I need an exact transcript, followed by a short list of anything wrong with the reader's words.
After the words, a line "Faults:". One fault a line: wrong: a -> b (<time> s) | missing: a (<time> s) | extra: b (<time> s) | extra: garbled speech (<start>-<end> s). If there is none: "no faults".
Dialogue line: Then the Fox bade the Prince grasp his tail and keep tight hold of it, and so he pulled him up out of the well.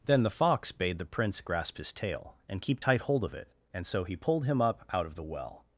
Then the Fox bade the Prince grasp his tail and keep tight hold of it, and so he pulled him up out of the well.
Faults:
no faults